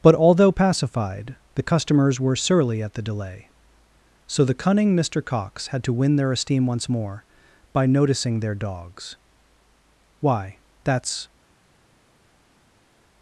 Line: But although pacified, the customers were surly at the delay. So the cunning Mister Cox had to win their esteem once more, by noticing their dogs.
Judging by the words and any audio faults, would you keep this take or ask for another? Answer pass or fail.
fail